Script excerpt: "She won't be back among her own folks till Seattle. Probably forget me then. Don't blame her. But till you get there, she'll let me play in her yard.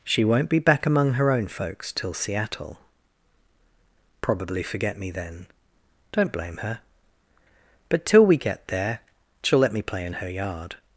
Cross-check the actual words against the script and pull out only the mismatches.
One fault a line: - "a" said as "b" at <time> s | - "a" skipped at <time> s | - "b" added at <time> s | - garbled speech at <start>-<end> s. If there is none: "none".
- "you" said as "we" at 8.3 s